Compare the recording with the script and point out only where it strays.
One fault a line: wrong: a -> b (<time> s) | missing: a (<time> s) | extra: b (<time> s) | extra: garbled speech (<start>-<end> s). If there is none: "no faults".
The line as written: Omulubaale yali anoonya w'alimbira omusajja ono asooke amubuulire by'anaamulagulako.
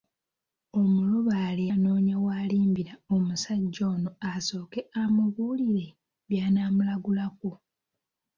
missing: yali (1.6 s)